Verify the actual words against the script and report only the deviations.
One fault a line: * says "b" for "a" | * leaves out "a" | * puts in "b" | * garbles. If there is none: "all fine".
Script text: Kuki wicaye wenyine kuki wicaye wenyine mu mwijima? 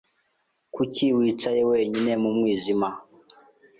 * leaves out "kuki wicaye wenyine"